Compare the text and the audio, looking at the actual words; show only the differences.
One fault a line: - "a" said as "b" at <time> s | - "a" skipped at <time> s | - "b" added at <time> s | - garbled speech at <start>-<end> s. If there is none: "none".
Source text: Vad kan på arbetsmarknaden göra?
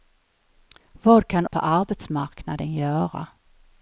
none